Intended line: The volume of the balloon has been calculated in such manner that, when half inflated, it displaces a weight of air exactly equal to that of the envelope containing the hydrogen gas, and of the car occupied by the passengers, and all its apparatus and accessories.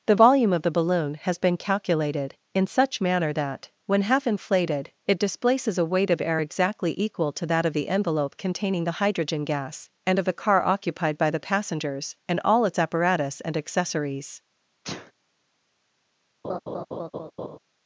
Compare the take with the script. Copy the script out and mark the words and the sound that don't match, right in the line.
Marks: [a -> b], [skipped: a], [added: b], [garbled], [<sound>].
The volume of the balloon has been calculated in such manner that, when half inflated, it displaces a weight of air exactly equal to that of the envelope containing the hydrogen gas, and of the car occupied by the passengers, and all its apparatus and accessories. [sneeze] [laugh]